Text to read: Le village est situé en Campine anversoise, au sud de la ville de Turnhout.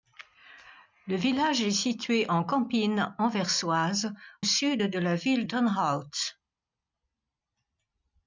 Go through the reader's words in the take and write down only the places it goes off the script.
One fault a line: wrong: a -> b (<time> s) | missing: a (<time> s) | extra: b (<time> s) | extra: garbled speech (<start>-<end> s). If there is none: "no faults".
missing: au (4.1 s)
missing: de (5.4 s)